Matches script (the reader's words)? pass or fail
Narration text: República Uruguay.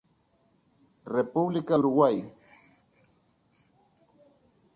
pass